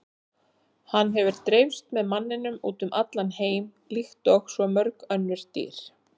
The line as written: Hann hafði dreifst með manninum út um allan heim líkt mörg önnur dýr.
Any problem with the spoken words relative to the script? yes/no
yes